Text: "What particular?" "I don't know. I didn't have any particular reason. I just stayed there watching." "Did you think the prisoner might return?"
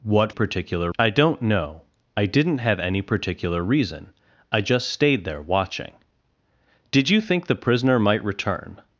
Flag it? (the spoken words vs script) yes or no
no